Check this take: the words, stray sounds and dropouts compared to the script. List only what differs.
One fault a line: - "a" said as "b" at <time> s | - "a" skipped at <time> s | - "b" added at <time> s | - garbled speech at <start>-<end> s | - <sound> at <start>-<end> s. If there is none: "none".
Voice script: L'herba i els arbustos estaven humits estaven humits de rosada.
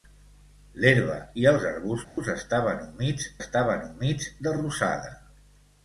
- dropout at 2.0-2.2 s